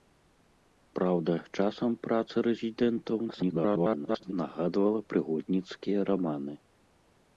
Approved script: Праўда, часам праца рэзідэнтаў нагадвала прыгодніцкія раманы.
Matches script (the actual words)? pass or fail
fail